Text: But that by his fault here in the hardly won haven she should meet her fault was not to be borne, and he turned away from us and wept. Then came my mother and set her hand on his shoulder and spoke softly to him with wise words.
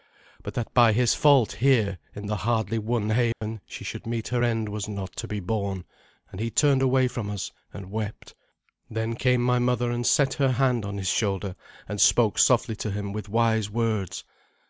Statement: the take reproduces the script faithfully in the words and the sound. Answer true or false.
false